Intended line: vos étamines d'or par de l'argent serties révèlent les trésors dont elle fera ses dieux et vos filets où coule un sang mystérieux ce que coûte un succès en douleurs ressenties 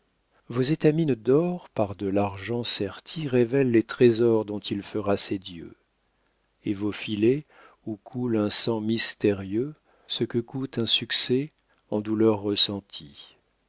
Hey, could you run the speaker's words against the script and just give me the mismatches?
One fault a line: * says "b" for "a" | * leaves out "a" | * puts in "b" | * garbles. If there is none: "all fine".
* says "il" for "elle"